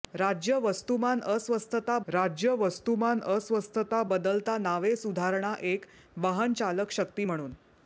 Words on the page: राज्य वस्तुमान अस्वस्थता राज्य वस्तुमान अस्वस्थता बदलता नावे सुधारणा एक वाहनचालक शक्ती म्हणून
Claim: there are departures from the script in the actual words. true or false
false